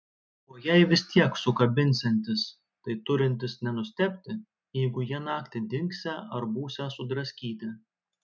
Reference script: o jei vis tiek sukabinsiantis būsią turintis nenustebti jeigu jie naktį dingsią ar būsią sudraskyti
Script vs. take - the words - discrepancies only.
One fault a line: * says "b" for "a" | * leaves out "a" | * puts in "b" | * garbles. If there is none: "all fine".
* says "tai" for "būsią"